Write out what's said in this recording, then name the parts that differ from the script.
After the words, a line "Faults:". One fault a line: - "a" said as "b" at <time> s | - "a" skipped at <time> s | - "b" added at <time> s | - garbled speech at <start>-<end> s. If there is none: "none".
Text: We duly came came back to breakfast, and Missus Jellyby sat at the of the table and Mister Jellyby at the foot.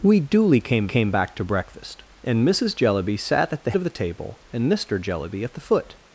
We duly came came back to breakfast, and Missus Jellyby sat at the of the table and Mister Jellyby at the foot.
Faults:
none